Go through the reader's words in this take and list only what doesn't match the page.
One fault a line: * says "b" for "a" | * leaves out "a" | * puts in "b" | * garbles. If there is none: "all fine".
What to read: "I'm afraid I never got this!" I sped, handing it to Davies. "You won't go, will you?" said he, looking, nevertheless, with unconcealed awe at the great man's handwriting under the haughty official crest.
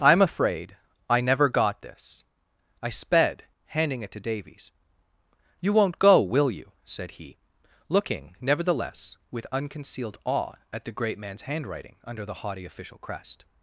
all fine